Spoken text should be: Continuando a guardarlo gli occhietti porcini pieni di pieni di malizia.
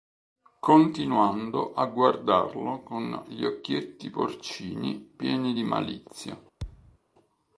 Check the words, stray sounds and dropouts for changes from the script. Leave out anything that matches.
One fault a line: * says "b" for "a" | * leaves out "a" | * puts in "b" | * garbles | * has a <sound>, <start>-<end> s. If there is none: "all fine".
* puts in "con"
* leaves out "pieni di"
* has a thud, 6.6-7.0 s